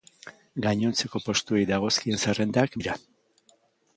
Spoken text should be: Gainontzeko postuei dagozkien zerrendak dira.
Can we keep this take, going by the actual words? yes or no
yes